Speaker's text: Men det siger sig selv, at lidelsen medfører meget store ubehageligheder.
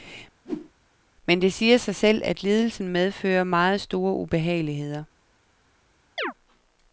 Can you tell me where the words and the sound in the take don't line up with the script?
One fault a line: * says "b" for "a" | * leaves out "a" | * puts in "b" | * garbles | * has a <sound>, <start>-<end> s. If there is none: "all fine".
* has a whoosh, 0.4-0.7 s
* has a chirp, 6.2-6.3 s